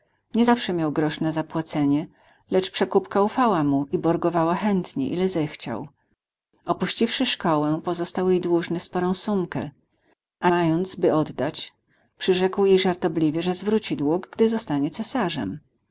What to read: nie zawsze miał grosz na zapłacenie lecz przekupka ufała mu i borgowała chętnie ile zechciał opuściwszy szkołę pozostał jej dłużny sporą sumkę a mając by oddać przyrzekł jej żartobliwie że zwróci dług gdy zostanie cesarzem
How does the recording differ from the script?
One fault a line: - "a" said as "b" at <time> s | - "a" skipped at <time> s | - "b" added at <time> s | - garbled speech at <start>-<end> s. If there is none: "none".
none